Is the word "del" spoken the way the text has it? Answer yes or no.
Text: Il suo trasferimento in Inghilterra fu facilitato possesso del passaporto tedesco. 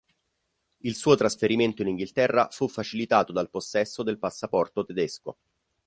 yes